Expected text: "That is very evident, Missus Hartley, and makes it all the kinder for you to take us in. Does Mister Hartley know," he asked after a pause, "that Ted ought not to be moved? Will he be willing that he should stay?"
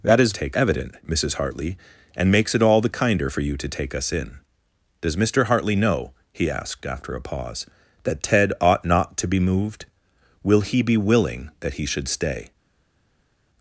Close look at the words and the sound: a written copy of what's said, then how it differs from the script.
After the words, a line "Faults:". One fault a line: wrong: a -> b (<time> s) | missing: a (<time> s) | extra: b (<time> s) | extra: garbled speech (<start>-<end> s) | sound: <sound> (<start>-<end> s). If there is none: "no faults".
"That is take evident, Missus Hartley, and makes it all the kinder for you to take us in. Does Mister Hartley know," he asked after a pause, "that Ted ought not to be moved? Will he be willing that he should stay?"
Faults:
wrong: very -> take (0.3 s)